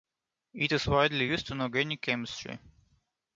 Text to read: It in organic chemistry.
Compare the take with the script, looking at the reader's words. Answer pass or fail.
fail